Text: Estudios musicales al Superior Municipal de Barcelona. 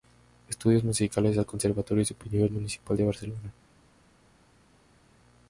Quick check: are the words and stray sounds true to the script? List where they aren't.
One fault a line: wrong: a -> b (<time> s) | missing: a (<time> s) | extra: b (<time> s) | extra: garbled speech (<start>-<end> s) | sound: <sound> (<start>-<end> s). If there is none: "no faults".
extra: Conservatorio (1.4 s)